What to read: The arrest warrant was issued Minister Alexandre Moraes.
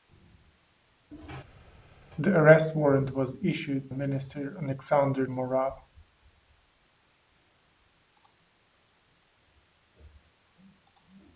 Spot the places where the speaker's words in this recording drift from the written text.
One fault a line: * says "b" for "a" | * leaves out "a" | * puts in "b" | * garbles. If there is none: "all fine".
all fine